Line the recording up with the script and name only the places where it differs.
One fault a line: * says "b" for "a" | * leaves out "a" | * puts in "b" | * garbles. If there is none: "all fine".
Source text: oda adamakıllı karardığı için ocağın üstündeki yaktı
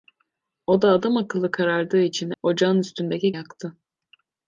all fine